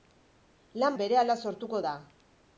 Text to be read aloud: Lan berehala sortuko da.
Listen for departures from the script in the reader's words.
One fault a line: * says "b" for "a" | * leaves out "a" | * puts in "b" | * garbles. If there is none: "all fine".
all fine